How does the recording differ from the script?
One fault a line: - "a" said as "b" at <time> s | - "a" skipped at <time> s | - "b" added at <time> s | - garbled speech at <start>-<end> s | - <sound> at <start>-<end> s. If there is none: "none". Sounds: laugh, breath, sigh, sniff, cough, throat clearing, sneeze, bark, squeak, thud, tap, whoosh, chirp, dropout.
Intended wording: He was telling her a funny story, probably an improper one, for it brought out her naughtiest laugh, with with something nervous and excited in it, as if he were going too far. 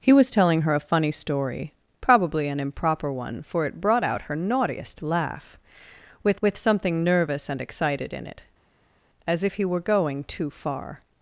none